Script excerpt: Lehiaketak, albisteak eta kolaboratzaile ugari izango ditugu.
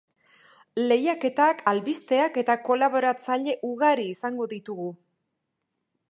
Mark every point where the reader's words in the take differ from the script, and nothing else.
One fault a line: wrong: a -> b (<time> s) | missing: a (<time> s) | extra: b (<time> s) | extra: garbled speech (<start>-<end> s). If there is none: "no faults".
no faults